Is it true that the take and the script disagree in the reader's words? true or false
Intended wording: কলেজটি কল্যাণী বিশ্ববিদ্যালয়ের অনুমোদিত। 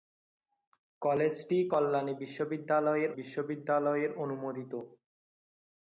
true